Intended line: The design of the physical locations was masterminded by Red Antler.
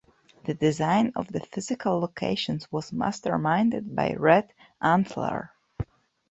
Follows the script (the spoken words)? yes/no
yes